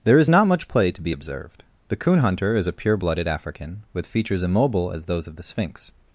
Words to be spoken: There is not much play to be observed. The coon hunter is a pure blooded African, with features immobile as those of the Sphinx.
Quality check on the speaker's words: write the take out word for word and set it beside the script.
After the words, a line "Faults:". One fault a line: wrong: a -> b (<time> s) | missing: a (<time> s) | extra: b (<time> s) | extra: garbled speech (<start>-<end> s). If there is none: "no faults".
There is not much play to be observed. The coon hunter is a pure blooded African, with features immobile as those of the Sphinx.
Faults:
no faults